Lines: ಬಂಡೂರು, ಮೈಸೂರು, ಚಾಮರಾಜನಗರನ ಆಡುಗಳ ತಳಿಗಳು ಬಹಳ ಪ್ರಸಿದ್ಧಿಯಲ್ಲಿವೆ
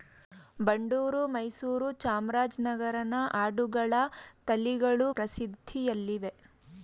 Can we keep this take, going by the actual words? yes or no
no